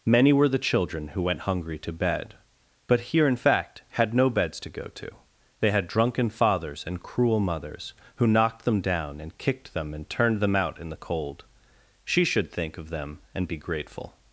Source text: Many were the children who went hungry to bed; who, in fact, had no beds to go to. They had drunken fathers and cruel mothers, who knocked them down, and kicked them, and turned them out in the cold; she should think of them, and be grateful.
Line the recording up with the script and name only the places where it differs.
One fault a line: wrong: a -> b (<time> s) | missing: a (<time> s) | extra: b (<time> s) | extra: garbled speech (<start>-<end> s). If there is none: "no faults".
wrong: who -> but here (2.9 s)